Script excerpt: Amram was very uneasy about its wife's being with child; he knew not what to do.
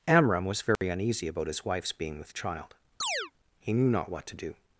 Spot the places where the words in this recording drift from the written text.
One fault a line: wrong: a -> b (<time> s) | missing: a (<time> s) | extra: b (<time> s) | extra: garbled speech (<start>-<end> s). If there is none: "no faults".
wrong: its -> his (1.5 s)